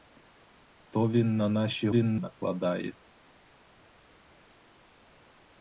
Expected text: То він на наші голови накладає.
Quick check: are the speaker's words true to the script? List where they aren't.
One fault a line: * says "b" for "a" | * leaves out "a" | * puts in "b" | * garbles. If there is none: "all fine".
* says "він" for "голови"